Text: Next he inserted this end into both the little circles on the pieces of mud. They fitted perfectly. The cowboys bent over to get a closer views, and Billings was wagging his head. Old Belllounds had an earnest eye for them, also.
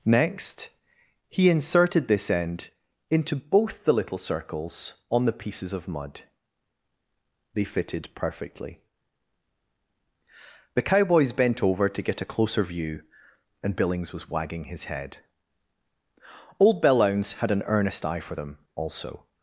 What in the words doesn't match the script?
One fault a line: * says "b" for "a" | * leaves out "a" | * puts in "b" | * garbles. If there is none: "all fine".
* says "view" for "views"